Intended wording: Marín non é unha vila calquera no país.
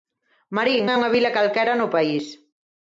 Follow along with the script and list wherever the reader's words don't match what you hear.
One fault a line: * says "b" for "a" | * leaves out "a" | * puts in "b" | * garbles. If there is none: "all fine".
* leaves out "non"